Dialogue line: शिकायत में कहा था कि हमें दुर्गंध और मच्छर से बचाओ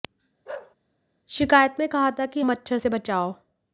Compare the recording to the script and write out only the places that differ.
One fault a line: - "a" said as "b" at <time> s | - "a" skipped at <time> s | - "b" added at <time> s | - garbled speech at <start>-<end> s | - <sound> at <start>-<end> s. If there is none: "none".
- bark at 0.5-0.8 s
- "हमें दुर्गंध और" skipped at 2.4 s